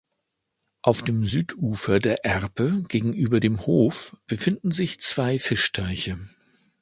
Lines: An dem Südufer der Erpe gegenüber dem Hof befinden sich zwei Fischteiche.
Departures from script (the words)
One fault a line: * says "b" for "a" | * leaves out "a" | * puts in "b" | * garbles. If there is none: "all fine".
* says "Auf" for "An"